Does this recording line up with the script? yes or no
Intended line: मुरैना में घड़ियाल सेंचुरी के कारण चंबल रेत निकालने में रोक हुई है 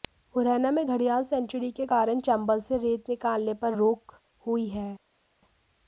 no